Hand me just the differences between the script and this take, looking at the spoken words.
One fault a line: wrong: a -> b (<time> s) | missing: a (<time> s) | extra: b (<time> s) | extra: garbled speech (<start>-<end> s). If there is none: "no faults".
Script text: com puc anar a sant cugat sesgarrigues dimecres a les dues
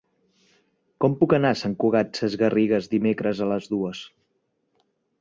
no faults